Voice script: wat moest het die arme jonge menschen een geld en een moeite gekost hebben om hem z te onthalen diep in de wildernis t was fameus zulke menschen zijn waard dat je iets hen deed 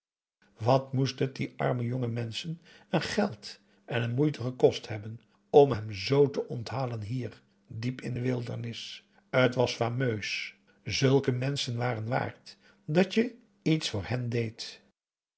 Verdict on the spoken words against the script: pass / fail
fail